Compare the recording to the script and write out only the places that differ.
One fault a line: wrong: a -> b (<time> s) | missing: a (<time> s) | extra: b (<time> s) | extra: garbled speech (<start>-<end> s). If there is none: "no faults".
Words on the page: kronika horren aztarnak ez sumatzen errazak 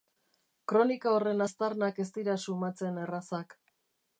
extra: dira (2.2 s)